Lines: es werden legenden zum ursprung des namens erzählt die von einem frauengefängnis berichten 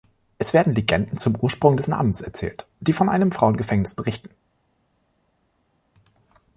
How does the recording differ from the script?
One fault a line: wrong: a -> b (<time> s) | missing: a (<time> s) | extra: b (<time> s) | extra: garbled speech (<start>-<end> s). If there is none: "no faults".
no faults